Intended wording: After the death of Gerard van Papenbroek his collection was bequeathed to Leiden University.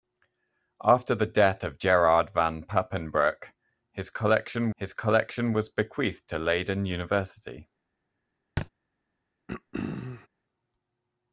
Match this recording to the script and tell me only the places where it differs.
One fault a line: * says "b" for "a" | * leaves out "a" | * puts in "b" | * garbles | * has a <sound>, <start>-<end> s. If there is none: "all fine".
* puts in "his collection"
* has a thud, 8.6-8.7 s
* has a throat clearing, 9.5-10.3 s